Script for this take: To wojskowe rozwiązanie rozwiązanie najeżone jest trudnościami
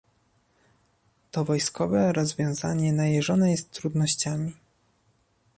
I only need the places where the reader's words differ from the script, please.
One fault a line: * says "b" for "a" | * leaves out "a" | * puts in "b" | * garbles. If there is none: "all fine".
* leaves out "rozwiązanie"